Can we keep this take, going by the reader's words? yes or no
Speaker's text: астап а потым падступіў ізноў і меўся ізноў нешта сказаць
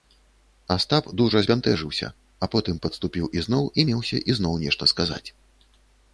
no